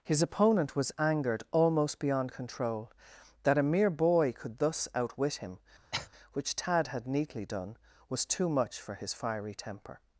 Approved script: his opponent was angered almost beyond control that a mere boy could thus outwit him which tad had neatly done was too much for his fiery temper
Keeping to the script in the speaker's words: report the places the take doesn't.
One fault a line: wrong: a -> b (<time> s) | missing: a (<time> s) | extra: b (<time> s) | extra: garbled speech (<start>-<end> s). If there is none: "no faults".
no faults